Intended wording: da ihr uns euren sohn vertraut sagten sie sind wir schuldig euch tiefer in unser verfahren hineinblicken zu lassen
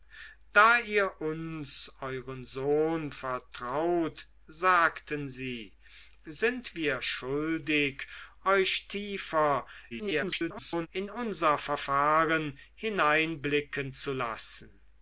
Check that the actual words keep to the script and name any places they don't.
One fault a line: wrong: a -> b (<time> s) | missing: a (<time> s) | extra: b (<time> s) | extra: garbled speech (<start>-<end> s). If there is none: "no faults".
extra: garbled speech (9.9-10.9 s)